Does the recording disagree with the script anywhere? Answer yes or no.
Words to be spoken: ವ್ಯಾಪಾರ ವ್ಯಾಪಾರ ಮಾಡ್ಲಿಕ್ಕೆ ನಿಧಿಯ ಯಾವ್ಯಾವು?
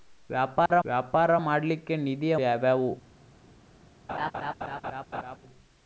no